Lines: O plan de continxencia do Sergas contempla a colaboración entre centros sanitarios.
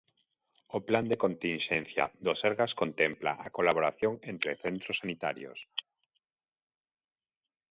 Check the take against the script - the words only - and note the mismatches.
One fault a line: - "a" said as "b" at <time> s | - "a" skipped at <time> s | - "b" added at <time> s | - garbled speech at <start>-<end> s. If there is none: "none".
none